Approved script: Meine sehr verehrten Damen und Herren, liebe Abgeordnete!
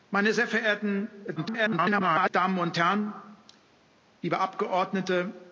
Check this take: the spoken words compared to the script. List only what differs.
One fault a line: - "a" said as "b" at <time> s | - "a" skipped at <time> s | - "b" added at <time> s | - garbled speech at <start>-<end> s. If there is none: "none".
- garbled speech at 1.4-2.3 s